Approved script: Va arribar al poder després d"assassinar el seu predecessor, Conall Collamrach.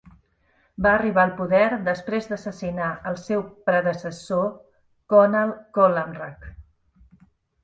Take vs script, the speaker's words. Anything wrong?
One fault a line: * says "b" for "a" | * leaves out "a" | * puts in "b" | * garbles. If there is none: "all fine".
all fine